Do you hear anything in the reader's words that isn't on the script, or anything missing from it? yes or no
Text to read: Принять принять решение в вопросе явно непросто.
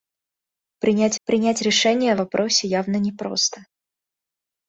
no